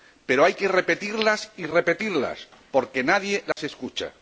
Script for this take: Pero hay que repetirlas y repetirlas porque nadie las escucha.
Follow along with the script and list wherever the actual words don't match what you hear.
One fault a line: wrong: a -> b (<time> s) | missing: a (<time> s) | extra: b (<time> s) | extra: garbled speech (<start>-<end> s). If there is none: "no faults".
no faults